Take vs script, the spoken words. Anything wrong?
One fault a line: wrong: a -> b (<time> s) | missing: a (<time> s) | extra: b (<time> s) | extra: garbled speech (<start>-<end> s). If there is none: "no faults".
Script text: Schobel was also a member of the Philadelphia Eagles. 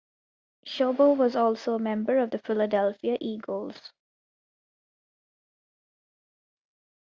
no faults